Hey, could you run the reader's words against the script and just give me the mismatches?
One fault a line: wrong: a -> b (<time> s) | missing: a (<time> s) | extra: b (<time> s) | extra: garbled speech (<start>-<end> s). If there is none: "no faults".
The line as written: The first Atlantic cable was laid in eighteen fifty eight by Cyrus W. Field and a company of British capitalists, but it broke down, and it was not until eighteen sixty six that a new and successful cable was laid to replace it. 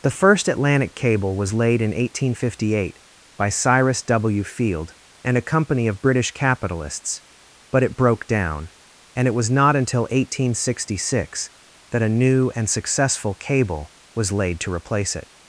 no faults